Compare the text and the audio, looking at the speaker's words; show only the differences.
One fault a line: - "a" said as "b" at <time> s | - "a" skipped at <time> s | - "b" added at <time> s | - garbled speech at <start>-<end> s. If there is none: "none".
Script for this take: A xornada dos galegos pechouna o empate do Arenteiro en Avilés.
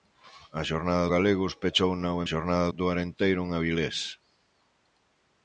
- "dos" skipped at 1.1 s
- "empate" said as "xornada" at 2.3 s